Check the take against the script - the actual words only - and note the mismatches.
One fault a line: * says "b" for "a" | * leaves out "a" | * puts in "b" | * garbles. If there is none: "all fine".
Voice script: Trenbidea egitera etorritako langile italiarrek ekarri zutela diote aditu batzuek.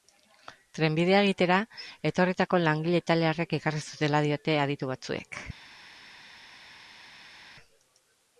all fine